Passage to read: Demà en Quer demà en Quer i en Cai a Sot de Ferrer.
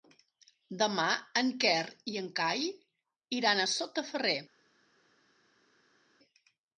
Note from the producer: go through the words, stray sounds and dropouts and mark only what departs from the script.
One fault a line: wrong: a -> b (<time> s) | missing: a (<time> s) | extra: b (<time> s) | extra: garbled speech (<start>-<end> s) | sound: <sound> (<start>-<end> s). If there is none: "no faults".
missing: demà en Quer (1.8 s)
extra: iran (3.4 s)